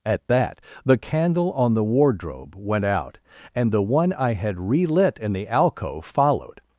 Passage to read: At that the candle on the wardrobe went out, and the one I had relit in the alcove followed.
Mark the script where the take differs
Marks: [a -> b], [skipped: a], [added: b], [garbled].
At that the candle on the wardrobe went out, and the one I had relit in the alcove followed.